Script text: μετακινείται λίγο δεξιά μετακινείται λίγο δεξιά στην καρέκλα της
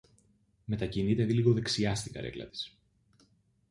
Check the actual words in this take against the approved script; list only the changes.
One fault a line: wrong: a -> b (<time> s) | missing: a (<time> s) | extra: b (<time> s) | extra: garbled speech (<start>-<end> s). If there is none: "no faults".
missing: μετακινείται λίγο δεξιά (1.9 s)